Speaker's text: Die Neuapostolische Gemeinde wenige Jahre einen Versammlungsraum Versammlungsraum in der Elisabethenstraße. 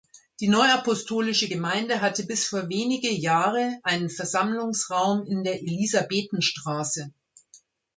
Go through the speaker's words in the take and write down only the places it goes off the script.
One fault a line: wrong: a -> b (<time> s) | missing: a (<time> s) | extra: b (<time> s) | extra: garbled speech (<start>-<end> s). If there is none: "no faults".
extra: hatte bis vor (2.0 s)
missing: Versammlungsraum (5.3 s)